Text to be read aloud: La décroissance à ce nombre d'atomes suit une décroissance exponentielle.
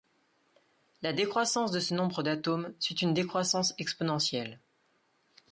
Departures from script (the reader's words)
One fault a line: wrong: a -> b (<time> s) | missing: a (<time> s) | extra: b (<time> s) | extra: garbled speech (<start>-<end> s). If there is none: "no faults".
wrong: à -> de (1.7 s)